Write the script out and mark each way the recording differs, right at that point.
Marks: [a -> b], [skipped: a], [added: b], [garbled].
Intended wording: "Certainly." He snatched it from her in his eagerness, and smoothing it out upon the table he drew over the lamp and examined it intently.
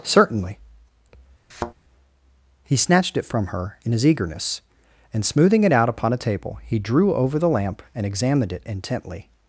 "Certainly." He snatched it from her in his eagerness, and smoothing it out upon [the -> a] table he drew over the lamp and examined it intently.